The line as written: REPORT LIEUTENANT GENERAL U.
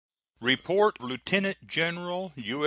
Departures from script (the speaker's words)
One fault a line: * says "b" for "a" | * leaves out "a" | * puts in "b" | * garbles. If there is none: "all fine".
all fine